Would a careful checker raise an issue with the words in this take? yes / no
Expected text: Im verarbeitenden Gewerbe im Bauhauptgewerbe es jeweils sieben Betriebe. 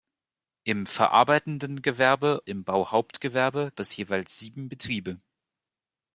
no